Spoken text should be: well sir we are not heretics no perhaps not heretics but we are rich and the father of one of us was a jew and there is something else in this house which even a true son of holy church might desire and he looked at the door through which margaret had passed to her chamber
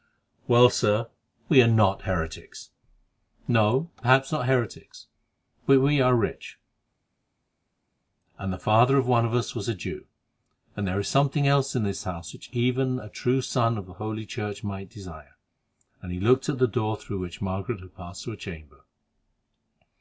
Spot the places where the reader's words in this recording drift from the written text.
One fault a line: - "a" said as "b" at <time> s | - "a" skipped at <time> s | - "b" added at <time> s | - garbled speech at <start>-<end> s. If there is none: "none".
none